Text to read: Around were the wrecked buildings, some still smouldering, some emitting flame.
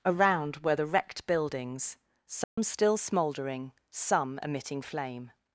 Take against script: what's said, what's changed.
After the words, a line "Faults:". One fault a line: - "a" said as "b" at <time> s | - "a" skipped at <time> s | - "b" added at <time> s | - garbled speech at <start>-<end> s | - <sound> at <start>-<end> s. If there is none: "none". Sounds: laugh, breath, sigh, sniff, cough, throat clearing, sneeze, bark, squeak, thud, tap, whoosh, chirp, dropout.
Around were the wrecked buildings, some still smouldering, some emitting flame.
Faults:
- dropout at 2.4-2.6 s